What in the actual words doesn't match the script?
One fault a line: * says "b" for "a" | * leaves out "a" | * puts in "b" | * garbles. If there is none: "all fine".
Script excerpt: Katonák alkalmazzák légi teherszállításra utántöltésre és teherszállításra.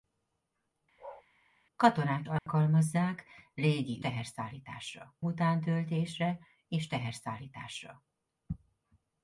all fine